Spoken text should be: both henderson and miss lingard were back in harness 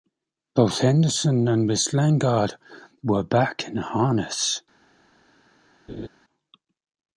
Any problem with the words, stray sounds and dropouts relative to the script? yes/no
yes